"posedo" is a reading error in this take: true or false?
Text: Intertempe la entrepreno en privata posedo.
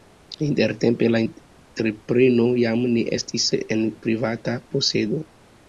false